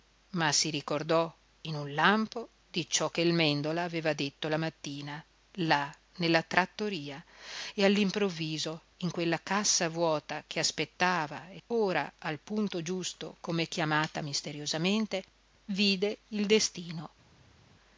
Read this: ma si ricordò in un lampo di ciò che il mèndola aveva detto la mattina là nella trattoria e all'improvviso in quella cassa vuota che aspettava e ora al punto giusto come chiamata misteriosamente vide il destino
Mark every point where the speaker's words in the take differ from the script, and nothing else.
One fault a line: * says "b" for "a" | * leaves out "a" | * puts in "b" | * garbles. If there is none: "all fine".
all fine